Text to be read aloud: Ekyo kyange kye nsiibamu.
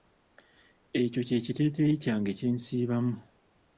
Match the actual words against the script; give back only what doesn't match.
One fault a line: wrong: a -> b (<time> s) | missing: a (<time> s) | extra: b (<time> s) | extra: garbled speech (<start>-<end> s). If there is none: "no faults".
extra: kye kiteeteeyi (1.3 s)